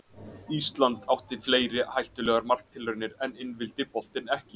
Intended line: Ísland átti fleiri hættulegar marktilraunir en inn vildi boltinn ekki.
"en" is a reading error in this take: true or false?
false